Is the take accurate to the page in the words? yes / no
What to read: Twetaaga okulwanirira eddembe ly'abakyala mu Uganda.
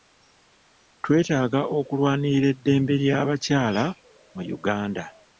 yes